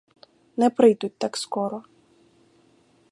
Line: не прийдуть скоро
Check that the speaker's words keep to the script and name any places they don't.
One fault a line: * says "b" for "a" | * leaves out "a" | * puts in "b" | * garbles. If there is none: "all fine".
* puts in "так"